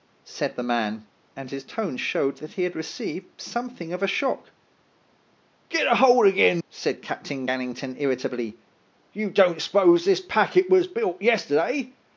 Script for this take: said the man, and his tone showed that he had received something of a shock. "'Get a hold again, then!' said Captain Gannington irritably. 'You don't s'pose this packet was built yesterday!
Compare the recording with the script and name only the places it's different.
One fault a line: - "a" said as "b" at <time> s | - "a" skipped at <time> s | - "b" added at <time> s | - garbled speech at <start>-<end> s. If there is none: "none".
- "then" skipped at 6.6 s